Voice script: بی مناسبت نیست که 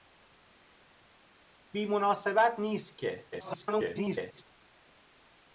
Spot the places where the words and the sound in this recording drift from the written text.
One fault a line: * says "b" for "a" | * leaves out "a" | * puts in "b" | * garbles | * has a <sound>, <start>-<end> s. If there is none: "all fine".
* garbles